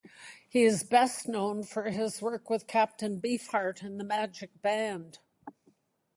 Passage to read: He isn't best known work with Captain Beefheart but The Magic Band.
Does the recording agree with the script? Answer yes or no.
no